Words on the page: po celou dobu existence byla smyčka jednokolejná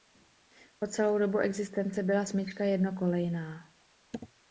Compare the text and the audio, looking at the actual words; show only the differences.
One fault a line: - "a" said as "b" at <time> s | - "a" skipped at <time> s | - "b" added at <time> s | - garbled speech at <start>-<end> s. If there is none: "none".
none